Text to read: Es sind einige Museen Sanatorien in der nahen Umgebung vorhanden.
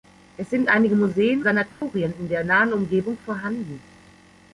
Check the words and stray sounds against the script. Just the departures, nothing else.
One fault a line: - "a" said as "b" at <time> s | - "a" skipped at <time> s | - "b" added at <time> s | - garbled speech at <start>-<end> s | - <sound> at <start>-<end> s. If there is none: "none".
- dropout at 1.7-1.8 s